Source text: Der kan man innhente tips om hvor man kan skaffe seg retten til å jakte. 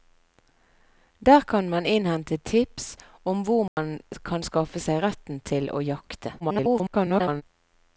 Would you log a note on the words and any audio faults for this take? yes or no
yes